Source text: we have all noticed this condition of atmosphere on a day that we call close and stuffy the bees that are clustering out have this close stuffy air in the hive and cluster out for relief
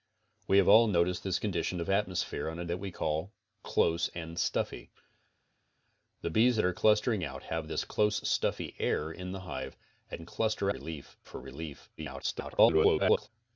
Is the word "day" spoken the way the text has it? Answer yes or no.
no